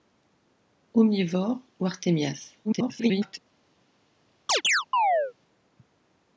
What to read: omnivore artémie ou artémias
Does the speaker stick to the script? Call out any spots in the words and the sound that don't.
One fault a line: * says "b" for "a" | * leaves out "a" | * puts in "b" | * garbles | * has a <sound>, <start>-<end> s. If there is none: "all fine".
* leaves out "artémie"
* garbles
* has a chirp, 4.5-5.3 s